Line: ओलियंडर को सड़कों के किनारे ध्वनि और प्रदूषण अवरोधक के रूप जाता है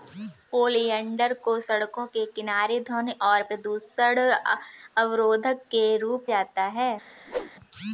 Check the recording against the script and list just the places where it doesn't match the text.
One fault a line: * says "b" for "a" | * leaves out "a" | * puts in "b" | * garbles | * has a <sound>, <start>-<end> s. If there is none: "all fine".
* has a whoosh, 7.3-7.5 s